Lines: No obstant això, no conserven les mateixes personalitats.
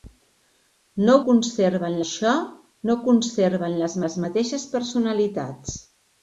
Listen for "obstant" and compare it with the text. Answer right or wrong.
wrong